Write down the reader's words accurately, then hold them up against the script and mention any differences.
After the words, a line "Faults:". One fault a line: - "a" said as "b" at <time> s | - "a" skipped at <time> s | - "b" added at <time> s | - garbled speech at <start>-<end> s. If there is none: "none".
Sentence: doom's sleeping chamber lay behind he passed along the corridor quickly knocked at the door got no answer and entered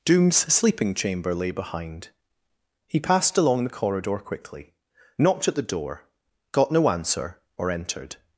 doom's sleeping chamber lay behind he passed along the corridor quickly knocked at the door got no answer or entered
Faults:
- "and" said as "or" at 7.6 s